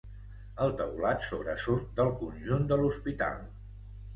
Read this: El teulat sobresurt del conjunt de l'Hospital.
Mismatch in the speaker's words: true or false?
false